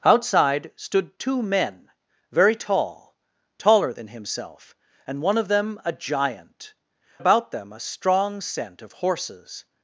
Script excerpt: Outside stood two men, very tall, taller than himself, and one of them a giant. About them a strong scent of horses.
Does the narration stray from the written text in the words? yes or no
no